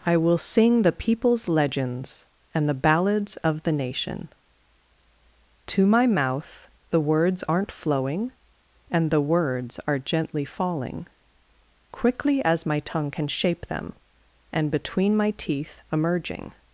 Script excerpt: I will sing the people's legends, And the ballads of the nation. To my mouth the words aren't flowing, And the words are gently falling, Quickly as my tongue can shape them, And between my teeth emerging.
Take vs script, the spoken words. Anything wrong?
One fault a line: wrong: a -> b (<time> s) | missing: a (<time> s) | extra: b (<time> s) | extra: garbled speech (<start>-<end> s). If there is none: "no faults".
no faults